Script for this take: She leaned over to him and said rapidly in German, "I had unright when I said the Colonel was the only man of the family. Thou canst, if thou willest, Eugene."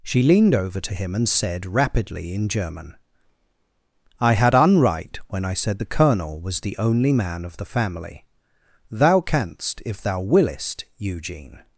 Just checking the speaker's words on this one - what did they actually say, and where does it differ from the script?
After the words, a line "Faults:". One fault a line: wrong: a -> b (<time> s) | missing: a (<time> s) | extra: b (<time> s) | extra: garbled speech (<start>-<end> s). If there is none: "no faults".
She leaned over to him and said rapidly in German, "I had unright when I said the Colonel was the only man of the family. Thou canst, if thou willest, Eugene."
Faults:
no faults